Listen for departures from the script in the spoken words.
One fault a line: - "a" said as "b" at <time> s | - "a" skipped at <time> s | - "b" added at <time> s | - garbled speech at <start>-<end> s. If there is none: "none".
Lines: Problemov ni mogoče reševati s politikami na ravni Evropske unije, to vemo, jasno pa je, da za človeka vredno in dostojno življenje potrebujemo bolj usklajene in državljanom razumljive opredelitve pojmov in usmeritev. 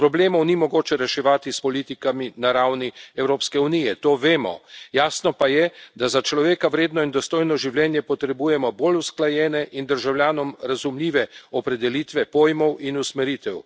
none